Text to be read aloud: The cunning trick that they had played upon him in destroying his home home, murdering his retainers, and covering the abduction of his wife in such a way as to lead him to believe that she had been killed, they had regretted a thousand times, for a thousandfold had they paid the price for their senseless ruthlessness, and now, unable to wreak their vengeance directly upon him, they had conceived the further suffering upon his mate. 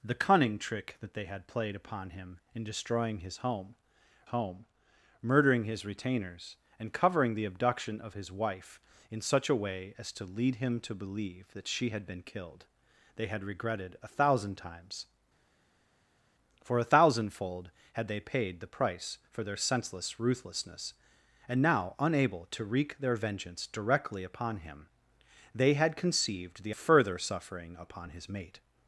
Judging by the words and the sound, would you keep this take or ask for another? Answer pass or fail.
pass